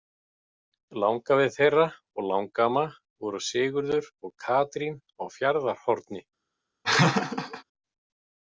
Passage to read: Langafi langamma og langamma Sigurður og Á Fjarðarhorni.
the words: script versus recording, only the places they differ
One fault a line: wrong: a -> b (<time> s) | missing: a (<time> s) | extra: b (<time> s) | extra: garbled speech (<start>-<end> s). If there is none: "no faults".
wrong: langamma -> þeirra (1.6 s)
extra: voru (3.3 s)
extra: Katrín (4.5 s)